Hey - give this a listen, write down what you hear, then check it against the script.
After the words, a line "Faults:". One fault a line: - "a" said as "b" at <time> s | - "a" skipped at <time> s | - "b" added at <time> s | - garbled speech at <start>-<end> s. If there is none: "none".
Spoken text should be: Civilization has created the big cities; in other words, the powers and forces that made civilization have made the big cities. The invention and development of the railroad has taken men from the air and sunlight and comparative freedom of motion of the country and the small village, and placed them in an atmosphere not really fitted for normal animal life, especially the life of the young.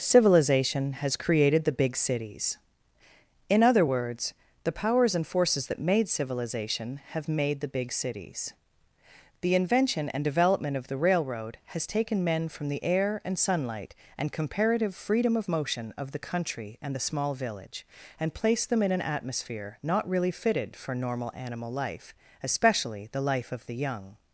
Civilization has created the big cities; in other words, the powers and forces that made civilization have made the big cities. The invention and development of the railroad has taken men from the air and sunlight and comparative freedom of motion of the country and the small village, and placed them in an atmosphere not really fitted for normal animal life, especially the life of the young.
Faults:
none